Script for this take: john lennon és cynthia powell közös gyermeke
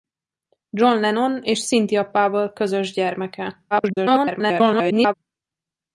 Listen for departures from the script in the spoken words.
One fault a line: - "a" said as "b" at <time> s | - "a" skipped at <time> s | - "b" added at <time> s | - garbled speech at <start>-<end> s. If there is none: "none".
- garbled speech at 3.7-5.1 s